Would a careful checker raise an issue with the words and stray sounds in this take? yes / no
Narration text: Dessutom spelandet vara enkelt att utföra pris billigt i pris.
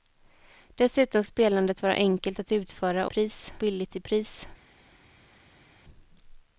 no